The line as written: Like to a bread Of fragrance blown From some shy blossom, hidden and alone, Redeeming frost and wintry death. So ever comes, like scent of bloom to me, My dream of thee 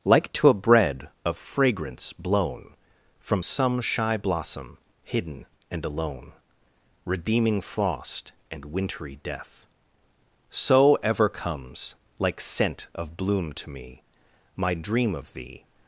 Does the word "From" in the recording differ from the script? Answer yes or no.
no